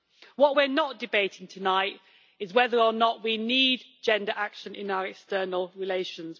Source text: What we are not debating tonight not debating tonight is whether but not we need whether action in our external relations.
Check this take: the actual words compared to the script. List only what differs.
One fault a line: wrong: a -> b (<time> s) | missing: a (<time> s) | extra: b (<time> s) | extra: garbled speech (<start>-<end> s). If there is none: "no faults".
missing: not debating tonight (2.0 s)
wrong: but -> or (2.8 s)
wrong: whether -> gender (4.0 s)